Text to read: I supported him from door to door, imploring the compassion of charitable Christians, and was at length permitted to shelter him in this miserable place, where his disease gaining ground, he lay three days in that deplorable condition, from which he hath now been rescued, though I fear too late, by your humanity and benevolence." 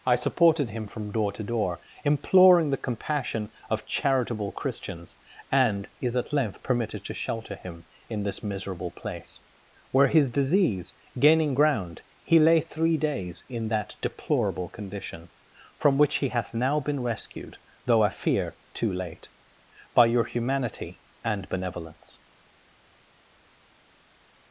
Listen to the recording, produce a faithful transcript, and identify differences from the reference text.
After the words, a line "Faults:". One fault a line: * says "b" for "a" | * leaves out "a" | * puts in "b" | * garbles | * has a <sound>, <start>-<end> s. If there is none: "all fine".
I supported him from door to door, imploring the compassion of charitable Christians, and is at length permitted to shelter him in this miserable place, where his disease gaining ground, he lay three days in that deplorable condition, from which he hath now been rescued, though I fear too late, by your humanity and benevolence."
Faults:
* says "is" for "was"